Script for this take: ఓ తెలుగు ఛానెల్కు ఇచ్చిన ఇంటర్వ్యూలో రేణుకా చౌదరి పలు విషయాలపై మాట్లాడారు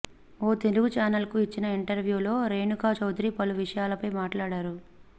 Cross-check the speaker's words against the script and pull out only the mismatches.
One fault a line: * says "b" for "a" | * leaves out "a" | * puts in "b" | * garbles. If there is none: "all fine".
all fine